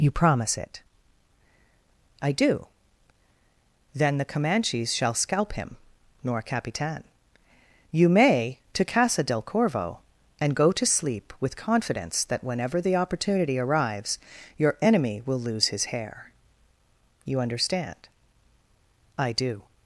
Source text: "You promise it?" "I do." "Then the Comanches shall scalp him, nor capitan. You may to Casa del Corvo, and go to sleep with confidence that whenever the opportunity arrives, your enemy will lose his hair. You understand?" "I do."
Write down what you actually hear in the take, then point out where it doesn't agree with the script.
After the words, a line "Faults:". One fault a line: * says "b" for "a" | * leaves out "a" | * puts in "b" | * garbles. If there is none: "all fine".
"You promise it?" "I do." "Then the Comanches shall scalp him, nor capitan. You may to Casa del Corvo, and go to sleep with confidence that whenever the opportunity arrives, your enemy will lose his hair. You understand?" "I do."
Faults:
all fine